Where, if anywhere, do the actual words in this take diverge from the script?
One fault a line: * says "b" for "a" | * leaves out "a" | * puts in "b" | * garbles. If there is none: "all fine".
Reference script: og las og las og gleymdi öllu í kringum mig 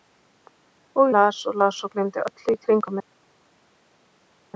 all fine